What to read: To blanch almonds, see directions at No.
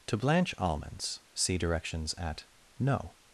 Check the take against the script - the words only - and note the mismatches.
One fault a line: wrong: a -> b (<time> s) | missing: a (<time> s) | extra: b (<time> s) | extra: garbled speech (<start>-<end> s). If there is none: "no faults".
no faults